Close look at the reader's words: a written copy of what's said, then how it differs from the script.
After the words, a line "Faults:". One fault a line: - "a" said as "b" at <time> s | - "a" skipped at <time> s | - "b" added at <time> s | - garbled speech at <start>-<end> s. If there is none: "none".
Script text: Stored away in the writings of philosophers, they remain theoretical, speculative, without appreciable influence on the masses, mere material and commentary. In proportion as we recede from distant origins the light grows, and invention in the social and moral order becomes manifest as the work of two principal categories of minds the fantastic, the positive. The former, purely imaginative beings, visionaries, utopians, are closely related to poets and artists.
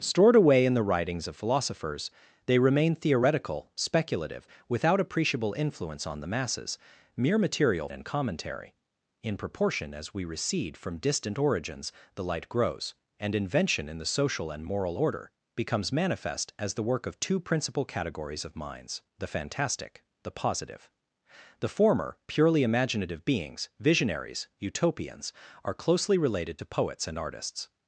Stored away in the writings of philosophers, they remain theoretical, speculative, without appreciable influence on the masses, mere material and commentary. In proportion as we recede from distant origins the light grows, and invention in the social and moral order becomes manifest as the work of two principal categories of minds the fantastic, the positive. The former, purely imaginative beings, visionaries, utopians, are closely related to poets and artists.
Faults:
none